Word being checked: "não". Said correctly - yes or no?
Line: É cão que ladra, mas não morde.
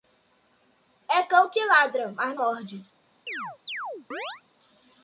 no